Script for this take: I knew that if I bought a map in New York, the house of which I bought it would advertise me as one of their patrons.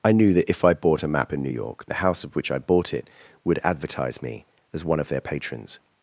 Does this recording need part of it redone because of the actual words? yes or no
no